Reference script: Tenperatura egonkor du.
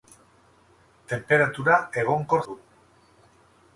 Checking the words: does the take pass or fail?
pass